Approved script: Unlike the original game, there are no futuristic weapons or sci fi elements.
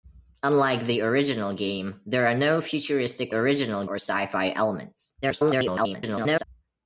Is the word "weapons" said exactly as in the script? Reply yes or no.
no